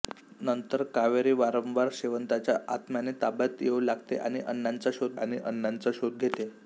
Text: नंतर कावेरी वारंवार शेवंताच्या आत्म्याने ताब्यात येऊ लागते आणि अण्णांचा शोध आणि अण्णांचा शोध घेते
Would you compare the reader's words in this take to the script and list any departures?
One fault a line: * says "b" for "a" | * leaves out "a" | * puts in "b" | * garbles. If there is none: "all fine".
all fine